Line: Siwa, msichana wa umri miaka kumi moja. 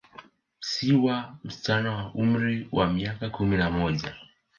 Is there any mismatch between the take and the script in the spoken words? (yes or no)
yes